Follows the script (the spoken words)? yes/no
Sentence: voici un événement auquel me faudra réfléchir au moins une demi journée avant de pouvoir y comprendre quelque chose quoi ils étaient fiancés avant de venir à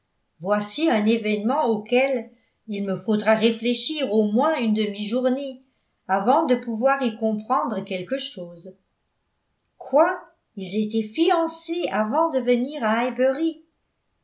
no